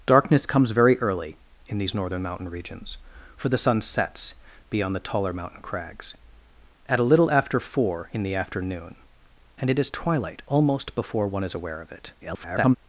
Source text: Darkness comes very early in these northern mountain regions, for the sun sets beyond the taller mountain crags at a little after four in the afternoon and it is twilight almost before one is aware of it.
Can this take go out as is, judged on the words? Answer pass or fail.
fail